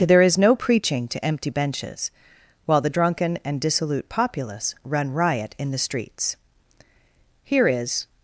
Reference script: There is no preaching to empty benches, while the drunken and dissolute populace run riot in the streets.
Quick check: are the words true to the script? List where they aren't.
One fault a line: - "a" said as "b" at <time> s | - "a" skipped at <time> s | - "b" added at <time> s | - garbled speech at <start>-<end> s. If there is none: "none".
- "Here is" added at 7.4 s